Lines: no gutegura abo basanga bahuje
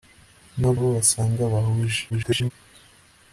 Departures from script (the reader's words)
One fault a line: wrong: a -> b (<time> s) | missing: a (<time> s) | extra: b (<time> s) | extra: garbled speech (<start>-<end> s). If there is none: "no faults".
missing: gutegura (0.7 s)
extra: garbled speech (2.1-2.5 s)